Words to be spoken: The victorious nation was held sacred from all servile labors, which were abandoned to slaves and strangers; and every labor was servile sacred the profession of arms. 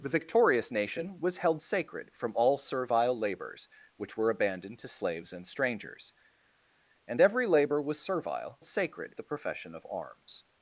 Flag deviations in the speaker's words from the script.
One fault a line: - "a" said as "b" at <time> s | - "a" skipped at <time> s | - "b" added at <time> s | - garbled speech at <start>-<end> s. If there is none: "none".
none